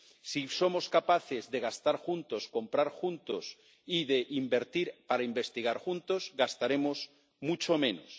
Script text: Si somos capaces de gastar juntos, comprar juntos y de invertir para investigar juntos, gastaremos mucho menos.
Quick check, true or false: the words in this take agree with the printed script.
true